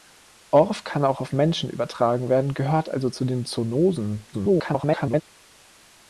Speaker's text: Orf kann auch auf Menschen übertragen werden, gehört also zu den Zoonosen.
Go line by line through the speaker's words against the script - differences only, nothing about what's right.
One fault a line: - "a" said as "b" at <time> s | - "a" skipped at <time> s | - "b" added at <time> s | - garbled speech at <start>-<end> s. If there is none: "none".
- garbled speech at 4.3-5.2 s